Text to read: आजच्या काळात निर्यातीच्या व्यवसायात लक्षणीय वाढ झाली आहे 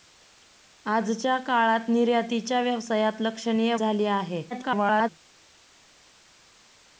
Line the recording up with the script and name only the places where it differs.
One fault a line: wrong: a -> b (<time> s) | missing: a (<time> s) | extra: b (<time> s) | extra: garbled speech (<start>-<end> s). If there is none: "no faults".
missing: वाढ (3.8 s)
extra: garbled speech (4.5-5.1 s)